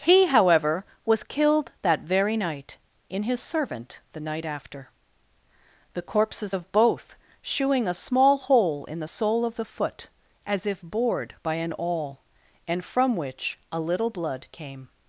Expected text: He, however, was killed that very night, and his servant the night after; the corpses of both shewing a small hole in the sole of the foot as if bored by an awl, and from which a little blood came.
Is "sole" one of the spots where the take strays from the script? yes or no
no